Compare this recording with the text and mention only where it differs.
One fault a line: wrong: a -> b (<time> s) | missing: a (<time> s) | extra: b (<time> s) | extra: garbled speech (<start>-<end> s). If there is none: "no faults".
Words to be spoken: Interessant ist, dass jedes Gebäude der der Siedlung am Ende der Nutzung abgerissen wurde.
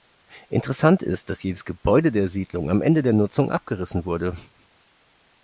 missing: der (2.3 s)